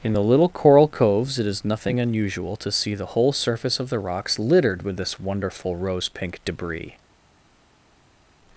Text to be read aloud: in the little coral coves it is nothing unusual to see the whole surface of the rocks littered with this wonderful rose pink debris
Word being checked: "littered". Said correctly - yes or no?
yes